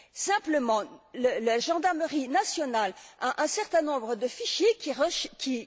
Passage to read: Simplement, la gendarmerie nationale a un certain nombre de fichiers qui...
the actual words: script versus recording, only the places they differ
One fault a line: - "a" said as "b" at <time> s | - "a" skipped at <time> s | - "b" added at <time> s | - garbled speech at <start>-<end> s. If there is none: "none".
none